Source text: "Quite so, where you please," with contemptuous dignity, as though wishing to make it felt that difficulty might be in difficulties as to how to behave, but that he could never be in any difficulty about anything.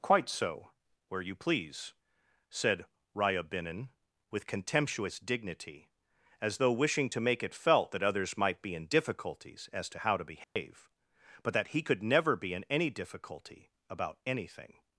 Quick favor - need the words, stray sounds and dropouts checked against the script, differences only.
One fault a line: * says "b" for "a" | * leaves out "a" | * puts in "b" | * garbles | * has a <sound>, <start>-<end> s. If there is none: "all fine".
* puts in "said Ryabinin"
* says "others" for "difficulty"
* has a dropout, 10.4-10.6 s